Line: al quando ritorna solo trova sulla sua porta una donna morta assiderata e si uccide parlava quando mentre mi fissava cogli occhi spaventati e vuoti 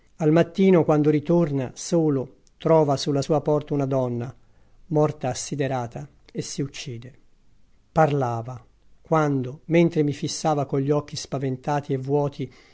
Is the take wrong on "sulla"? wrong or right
right